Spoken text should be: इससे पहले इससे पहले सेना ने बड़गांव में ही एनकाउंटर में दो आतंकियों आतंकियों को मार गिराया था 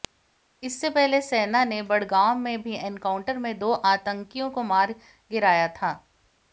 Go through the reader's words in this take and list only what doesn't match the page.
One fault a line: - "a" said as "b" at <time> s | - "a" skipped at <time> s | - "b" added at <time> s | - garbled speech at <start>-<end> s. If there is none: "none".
- "इससे पहले" skipped at 1.2 s
- "ही" said as "भी" at 2.6 s
- "आतंकियों" skipped at 4.5 s